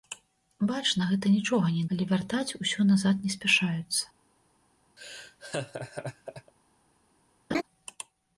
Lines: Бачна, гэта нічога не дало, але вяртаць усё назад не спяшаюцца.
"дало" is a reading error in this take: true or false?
true